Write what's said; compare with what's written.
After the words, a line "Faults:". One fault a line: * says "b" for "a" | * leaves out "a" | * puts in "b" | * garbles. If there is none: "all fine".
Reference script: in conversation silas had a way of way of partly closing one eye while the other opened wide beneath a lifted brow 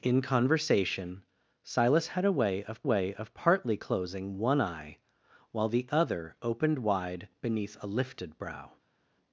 in conversation silas had a way of way of partly closing one eye while the other opened wide beneath a lifted brow
Faults:
all fine